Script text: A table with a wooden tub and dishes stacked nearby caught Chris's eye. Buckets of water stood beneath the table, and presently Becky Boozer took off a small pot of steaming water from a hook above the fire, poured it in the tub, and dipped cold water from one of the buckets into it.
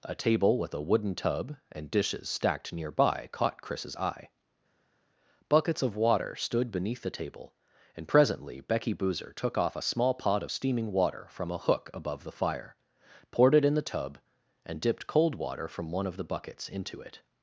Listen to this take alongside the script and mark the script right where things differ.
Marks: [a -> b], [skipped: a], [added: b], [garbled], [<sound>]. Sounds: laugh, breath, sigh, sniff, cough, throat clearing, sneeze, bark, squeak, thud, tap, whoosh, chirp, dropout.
A table with a wooden tub and dishes stacked nearby caught Chris's eye. Buckets of water stood beneath the table, and presently Becky Boozer took off a small pot of steaming water from a hook above the fire, poured it in the tub, and dipped cold water from one of the buckets into it.